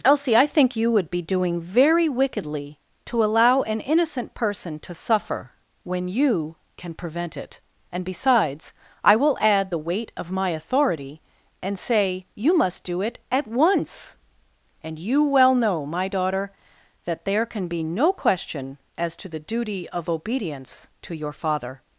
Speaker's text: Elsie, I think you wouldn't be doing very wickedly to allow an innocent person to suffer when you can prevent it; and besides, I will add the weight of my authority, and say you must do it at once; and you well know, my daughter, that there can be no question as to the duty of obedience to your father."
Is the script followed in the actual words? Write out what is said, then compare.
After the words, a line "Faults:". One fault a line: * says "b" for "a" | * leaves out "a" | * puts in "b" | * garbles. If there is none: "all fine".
Elsie, I think you would be doing very wickedly to allow an innocent person to suffer when you can prevent it; and besides, I will add the weight of my authority, and say you must do it at once; and you well know, my daughter, that there can be no question as to the duty of obedience to your father."
Faults:
* says "would" for "wouldn't"